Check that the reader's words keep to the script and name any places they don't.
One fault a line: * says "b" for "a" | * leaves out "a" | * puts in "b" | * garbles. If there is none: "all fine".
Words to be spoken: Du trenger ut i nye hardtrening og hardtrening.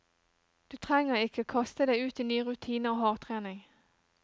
* puts in "ikke kaste deg"
* says "rutiner" for "hardtrening"